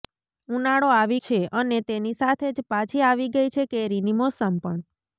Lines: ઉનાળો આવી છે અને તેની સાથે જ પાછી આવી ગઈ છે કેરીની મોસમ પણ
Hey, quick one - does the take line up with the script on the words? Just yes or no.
yes